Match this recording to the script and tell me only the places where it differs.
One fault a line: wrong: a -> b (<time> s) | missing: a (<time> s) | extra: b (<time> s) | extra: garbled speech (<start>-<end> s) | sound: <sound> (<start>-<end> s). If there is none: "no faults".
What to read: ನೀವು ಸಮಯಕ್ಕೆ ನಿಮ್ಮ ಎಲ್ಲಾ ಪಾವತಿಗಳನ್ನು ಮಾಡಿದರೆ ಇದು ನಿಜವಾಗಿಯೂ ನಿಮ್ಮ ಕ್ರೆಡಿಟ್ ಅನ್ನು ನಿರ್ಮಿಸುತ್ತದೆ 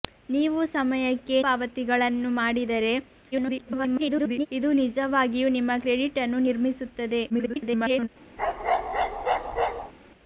missing: ನಿಮ್ಮ ಎಲ್ಲಾ (1.4 s)
extra: garbled speech (3.3-4.5 s)
extra: garbled speech (7.3-8.1 s)
sound: bark (8.4-9.9 s)